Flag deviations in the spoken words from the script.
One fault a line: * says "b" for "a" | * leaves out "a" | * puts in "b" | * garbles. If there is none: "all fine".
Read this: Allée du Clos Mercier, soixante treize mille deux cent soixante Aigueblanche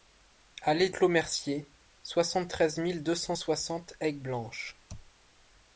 * leaves out "du"